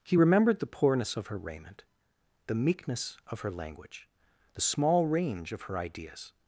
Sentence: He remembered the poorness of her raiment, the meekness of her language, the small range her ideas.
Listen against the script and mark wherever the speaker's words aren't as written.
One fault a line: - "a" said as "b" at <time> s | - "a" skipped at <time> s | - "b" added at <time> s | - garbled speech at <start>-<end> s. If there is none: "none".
- "of" added at 5.5 s